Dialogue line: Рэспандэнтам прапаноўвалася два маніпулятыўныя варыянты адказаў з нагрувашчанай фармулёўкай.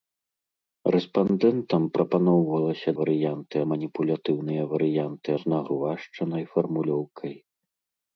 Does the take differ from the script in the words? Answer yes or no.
yes